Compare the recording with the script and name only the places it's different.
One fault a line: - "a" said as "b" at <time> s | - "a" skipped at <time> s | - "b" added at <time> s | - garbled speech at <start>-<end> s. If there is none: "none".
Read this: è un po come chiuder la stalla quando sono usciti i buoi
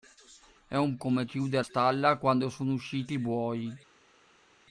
- "po" skipped at 1.0 s
- "la" skipped at 1.7 s